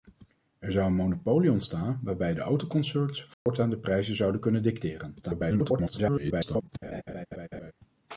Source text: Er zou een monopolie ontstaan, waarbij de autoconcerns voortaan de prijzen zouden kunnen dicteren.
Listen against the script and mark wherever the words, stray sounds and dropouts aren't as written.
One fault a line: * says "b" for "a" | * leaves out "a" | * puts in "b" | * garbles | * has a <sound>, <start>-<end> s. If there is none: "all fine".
* has a dropout, 3.3-3.5 s
* garbles
* has a laugh, 6.8-7.7 s